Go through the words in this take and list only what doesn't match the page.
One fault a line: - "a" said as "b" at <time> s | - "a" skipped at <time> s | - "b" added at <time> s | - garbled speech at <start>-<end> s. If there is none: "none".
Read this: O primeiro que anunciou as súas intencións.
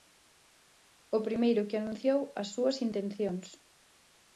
none